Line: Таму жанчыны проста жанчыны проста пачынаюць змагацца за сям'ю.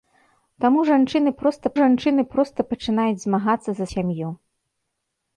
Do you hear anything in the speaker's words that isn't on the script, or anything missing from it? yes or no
no